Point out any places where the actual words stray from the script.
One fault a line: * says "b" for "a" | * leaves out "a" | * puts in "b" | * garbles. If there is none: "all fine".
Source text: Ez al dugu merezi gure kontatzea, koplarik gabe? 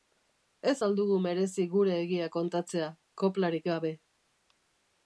* puts in "egia"